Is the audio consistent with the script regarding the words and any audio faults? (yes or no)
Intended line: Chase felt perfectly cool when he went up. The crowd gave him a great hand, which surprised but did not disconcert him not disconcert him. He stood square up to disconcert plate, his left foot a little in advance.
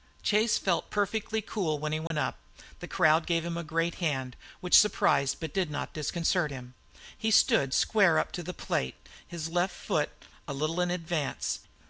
no